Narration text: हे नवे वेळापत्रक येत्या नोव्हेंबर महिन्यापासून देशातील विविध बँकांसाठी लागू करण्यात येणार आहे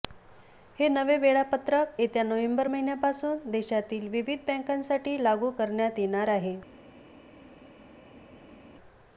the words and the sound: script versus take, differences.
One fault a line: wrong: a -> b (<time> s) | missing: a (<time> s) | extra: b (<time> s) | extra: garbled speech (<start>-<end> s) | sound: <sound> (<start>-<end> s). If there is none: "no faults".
no faults